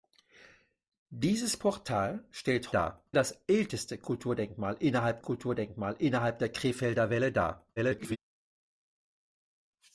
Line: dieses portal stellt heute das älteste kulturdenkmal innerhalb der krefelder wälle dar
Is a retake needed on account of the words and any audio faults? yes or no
yes